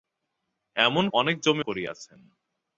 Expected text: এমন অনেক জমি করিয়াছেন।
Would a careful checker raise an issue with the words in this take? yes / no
no